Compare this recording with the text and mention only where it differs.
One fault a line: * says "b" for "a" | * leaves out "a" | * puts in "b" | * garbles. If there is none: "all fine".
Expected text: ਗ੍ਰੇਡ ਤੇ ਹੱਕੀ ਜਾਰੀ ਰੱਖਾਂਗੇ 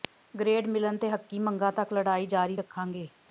* puts in "ਮਿਲਣ"
* puts in "ਮੰਗਾਂ ਤੱਕ ਲੜਾਈ"